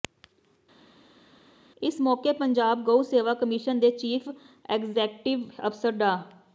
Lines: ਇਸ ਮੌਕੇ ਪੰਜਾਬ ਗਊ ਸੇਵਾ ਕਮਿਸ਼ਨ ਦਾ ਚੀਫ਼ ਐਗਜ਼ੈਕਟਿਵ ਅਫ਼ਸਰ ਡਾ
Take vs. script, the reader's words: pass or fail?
fail